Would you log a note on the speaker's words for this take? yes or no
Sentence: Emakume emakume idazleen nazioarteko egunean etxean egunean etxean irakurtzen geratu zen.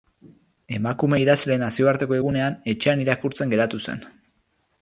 yes